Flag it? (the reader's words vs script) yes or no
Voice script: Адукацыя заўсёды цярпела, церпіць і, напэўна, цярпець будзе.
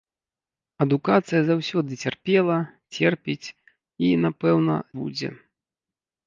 yes